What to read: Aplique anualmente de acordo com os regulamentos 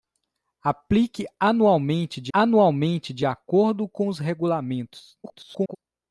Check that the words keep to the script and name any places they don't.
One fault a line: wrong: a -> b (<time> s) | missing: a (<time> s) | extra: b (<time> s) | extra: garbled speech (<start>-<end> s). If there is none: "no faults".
extra: anualmente de (2.3 s)
extra: garbled speech (5.2-5.8 s)